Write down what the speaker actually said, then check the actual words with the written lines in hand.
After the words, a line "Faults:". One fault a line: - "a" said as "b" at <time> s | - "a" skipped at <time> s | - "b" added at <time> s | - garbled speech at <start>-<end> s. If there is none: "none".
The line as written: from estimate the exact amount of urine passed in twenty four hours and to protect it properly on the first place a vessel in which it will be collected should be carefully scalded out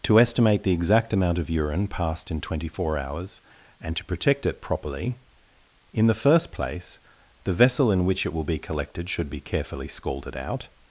to estimate the exact amount of urine passed in twenty four hours and to protect it properly in the first place the vessel in which it will be collected should be carefully scalded out
Faults:
- "from" said as "to" at 0.0 s
- "on" said as "in" at 5.9 s
- "a" said as "the" at 7.4 s